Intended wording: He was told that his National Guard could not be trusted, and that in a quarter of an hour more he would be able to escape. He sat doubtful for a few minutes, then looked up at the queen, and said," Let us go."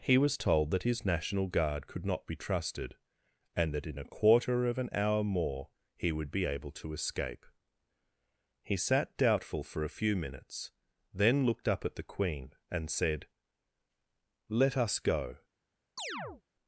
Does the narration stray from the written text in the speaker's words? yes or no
no